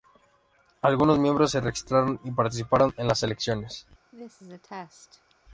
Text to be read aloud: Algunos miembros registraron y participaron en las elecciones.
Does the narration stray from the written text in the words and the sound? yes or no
yes